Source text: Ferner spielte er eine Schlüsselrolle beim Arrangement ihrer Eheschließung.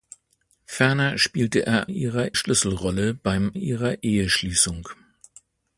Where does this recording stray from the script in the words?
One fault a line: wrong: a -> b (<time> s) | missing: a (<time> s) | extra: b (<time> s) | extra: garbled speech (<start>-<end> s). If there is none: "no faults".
wrong: eine -> ihrer (1.9 s)
missing: Arrangement (3.5 s)